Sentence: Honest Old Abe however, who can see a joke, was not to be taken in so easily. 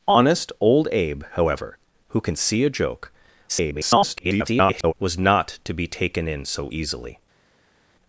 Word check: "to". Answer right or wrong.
right